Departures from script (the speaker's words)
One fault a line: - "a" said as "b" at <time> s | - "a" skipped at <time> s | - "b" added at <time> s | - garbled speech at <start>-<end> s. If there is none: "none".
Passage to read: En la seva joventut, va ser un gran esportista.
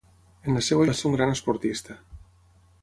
- "joventut" skipped at 0.9 s